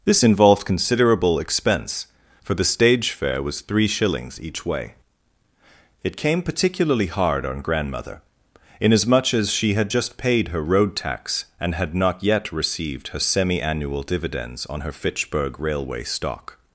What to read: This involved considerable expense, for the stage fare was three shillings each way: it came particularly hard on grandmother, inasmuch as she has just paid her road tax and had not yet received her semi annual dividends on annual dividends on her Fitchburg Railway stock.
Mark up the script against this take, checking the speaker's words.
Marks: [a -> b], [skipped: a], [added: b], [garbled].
This involved considerable expense, for the stage fare was three shillings each way: it came particularly hard on grandmother, inasmuch as she [has -> had] just paid her road tax and had not yet received her semi annual dividends on [skipped: annual dividends on] her Fitchburg Railway stock.